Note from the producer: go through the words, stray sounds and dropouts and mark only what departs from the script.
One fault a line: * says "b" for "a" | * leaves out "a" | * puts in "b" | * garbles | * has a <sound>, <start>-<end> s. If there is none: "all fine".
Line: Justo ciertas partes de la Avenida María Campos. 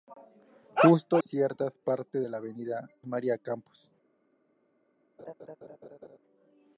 * has a laugh, 5.2-6.2 s